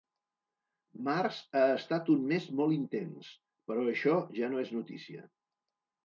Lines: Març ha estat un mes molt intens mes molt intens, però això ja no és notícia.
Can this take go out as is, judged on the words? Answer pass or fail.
fail